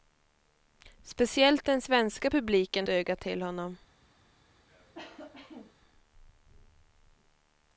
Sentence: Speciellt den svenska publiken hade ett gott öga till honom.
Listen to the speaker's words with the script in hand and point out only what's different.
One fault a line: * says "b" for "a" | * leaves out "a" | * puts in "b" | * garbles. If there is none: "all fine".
* leaves out "hade ett gott"